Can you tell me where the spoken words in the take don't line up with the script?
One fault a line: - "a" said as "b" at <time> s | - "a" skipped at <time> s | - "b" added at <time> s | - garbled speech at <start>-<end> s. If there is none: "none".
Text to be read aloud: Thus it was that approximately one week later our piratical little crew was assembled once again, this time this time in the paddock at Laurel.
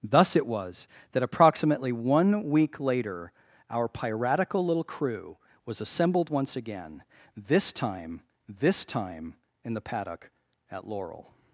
none